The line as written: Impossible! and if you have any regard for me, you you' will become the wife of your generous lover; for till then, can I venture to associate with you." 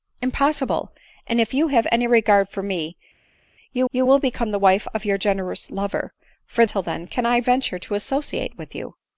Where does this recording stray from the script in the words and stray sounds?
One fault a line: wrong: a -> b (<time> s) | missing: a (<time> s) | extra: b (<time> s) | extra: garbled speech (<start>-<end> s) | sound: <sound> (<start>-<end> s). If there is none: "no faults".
no faults